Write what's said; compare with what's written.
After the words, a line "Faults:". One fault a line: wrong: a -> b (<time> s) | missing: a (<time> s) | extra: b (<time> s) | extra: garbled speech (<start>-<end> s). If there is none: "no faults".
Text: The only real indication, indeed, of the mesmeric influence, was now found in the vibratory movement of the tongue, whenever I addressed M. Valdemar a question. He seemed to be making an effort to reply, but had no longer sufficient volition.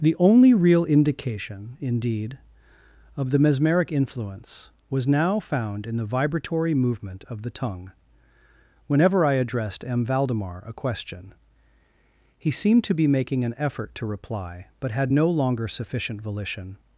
The only real indication, indeed, of the mesmeric influence, was now found in the vibratory movement of the tongue, whenever I addressed M. Valdemar a question. He seemed to be making an effort to reply, but had no longer sufficient volition.
Faults:
no faults